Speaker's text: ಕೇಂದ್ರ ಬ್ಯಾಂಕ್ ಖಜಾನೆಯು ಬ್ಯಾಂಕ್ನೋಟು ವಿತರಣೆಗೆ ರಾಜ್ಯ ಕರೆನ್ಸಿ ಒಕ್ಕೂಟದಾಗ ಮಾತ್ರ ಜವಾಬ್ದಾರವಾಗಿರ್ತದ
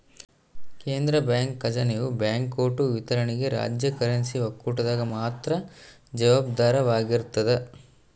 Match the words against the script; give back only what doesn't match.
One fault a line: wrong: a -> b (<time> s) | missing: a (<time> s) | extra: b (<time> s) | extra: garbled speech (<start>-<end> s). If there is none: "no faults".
no faults